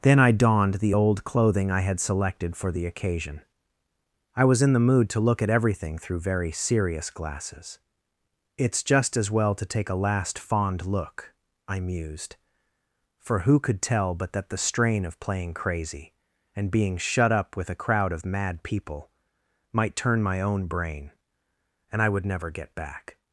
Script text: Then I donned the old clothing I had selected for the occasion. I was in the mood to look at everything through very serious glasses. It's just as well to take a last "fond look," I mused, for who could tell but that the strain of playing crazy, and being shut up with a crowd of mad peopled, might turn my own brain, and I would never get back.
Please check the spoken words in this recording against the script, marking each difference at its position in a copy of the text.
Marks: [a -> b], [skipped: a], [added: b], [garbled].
Then I donned the old clothing I had selected for the occasion. I was in the mood to look at everything through very serious glasses. It's just as well to take a last "fond look," I mused, for who could tell but that the strain of playing crazy, and being shut up with a crowd of mad [peopled, -> people] might turn my own brain, and I would never get back.